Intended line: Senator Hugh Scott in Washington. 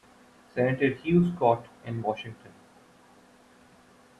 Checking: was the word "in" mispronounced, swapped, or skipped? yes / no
no